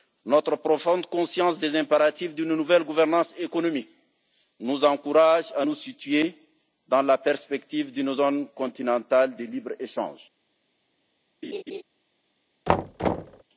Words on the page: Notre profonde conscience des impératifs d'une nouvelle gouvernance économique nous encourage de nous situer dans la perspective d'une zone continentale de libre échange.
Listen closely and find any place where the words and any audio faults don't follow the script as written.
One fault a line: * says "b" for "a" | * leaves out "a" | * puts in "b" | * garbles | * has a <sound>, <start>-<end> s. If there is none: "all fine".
* says "à" for "de"
* has a laugh, 11.4-11.8 s
* has a thud, 12.7-13.4 s